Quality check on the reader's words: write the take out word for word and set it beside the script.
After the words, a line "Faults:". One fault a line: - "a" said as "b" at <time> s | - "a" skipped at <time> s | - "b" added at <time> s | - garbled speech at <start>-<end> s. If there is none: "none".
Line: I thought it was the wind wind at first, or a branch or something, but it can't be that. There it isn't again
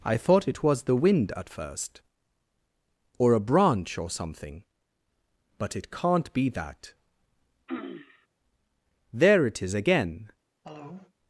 I thought it was the wind at first, or a branch or something, but it can't be that. There it is again
Faults:
- "wind" skipped at 1.3 s
- "isn't" said as "is" at 9.6 s